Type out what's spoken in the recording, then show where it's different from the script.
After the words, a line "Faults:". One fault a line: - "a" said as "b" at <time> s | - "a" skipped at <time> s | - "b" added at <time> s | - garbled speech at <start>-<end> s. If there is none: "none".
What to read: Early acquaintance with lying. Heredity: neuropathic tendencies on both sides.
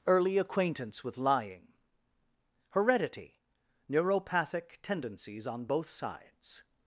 Early acquaintance with lying. Heredity: neuropathic tendencies on both sides.
Faults:
none